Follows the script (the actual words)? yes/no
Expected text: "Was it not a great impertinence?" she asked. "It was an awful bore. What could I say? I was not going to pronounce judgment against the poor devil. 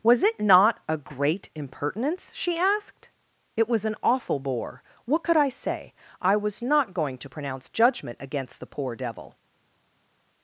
yes